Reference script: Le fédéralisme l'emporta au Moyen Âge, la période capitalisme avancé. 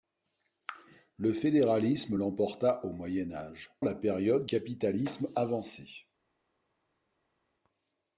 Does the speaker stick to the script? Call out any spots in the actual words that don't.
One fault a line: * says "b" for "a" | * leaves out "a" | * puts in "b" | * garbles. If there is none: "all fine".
all fine